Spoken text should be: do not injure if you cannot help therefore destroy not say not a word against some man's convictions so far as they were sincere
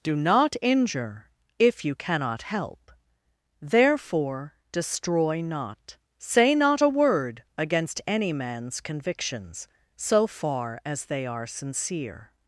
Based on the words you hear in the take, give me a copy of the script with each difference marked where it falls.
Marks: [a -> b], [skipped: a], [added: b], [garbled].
do not injure if you cannot help therefore destroy not say not a word against [some -> any] man's convictions so far as they [were -> are] sincere